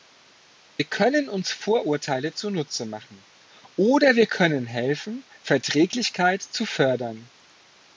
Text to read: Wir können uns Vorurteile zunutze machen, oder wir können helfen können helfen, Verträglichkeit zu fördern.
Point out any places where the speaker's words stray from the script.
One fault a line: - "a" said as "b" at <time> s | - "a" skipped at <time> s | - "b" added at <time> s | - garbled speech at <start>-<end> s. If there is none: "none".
- "können helfen" skipped at 5.2 s